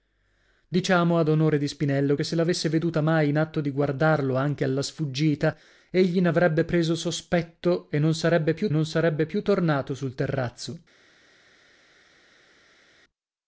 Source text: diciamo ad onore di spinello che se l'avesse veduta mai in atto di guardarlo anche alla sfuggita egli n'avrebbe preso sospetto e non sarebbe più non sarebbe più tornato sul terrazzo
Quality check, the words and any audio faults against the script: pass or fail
pass